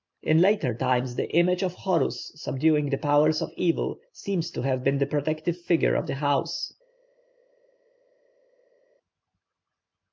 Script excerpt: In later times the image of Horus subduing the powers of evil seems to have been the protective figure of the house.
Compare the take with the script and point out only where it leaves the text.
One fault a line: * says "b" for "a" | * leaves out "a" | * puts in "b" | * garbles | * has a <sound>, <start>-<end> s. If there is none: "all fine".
all fine